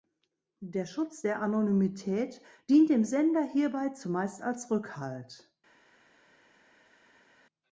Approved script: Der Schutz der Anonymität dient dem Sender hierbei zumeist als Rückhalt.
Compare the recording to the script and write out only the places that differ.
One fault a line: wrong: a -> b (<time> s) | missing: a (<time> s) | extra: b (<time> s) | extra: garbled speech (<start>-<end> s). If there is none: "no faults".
no faults